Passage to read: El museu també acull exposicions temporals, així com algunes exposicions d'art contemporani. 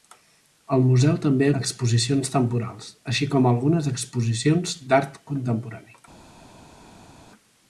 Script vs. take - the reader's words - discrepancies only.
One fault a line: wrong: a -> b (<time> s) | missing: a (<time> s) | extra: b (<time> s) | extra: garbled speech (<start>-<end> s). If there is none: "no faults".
missing: acull (1.5 s)